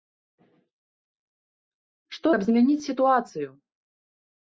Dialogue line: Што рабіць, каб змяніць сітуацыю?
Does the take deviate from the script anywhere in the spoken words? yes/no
yes